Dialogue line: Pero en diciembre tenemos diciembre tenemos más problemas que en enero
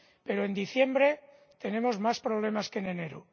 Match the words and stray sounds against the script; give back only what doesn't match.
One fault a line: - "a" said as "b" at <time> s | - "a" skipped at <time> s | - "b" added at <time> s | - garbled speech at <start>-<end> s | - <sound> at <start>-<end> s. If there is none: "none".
- "diciembre tenemos" skipped at 2.0 s